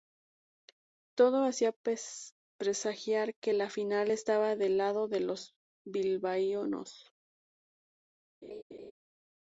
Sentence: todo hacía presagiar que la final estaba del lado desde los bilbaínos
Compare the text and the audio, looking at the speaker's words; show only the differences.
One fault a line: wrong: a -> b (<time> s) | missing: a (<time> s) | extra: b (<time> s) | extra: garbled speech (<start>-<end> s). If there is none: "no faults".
wrong: desde -> de (5.1 s)